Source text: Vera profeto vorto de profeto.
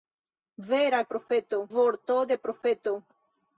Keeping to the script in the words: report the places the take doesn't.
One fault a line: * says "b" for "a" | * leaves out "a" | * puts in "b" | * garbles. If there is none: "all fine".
all fine